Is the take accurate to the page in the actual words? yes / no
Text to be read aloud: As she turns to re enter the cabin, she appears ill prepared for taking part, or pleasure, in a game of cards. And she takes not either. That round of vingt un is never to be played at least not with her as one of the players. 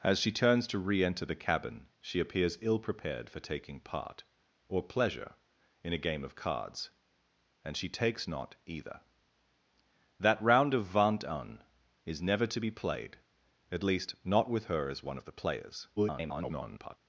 no